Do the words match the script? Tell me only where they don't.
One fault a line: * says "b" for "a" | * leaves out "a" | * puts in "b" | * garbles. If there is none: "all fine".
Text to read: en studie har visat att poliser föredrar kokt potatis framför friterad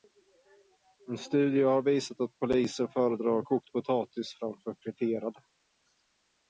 all fine